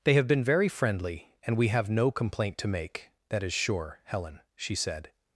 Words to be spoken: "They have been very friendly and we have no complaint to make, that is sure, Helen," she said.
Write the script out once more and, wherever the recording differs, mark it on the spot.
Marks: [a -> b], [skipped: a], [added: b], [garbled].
"They have been very friendly and we have no complaint to make, that is sure, Helen," she said.